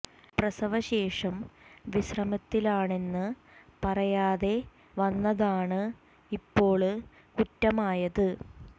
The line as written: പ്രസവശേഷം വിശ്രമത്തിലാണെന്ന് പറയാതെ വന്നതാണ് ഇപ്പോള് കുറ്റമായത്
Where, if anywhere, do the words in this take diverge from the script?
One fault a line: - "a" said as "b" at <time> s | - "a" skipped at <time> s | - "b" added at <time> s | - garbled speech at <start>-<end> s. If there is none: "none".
none